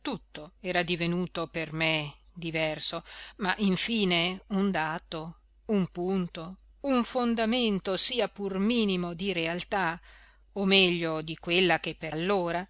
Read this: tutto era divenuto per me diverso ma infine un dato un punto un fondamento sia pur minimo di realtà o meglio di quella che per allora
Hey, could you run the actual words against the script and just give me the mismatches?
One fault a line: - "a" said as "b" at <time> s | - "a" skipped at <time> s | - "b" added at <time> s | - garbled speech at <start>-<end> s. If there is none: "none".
none